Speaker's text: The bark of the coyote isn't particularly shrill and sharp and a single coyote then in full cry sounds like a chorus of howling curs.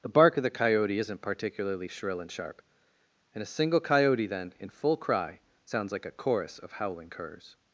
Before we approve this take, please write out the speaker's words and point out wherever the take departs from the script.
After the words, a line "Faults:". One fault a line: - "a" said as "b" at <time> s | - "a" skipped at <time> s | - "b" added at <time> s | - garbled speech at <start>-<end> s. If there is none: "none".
The bark of the coyote isn't particularly shrill and sharp and a single coyote then in full cry sounds like a chorus of howling curs.
Faults:
none